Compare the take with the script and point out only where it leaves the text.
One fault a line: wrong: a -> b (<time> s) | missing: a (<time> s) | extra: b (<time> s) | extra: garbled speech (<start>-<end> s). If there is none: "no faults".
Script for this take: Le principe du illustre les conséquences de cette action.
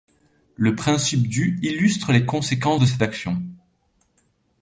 no faults